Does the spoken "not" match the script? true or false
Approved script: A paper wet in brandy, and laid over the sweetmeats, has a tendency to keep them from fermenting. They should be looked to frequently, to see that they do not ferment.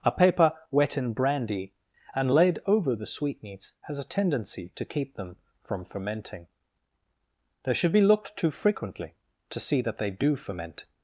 false